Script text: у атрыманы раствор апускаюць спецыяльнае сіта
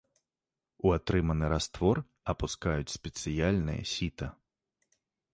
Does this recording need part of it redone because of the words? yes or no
no